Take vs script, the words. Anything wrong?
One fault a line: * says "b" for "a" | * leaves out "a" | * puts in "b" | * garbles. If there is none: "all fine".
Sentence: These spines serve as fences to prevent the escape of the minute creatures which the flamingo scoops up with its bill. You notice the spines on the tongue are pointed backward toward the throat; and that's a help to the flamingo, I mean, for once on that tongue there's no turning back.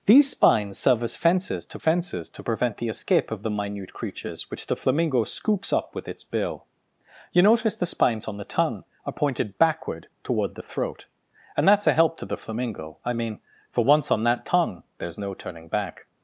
* puts in "fences to"